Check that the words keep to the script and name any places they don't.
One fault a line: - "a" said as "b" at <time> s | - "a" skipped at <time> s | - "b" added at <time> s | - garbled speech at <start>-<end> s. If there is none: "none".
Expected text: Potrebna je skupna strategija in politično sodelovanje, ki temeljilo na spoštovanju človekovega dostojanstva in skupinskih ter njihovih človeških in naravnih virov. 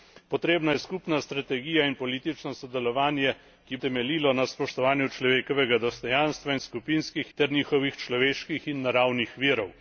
none